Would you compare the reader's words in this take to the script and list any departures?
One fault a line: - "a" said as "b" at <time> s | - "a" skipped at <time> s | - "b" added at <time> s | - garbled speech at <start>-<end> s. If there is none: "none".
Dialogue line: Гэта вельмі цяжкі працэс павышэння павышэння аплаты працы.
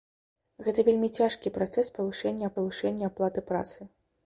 none